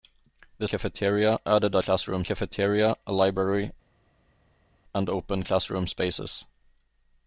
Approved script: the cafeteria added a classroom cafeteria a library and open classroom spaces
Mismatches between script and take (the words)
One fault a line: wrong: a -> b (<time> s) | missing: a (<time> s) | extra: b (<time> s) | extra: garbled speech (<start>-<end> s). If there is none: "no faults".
no faults